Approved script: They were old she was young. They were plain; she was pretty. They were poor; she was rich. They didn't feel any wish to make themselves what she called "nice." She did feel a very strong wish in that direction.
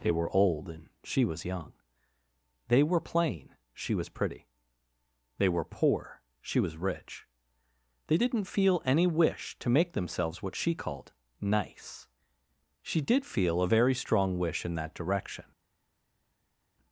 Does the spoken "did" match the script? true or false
true